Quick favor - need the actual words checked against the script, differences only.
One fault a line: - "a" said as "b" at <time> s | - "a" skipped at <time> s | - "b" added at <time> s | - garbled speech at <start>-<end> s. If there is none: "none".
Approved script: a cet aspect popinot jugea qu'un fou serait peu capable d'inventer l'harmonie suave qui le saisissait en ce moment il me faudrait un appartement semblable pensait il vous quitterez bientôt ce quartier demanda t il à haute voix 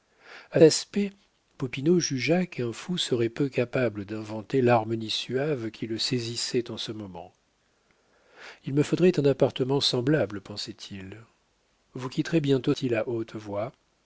- "cet" skipped at 0.6 s
- "ce quartier demanda" skipped at 12.7 s